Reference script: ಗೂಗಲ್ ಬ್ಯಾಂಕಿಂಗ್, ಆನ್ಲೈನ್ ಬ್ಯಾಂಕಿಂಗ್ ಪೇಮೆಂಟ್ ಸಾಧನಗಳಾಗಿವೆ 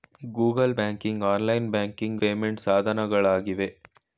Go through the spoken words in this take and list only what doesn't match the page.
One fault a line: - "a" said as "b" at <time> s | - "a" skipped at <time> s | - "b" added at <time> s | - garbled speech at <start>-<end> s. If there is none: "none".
none